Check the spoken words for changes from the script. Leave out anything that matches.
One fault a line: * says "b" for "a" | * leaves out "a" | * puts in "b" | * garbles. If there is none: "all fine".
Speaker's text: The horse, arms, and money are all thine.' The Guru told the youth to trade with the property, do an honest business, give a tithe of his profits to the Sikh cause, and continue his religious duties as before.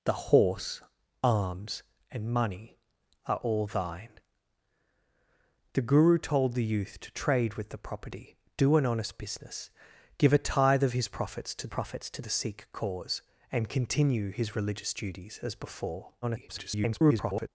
* puts in "profits to"
* garbles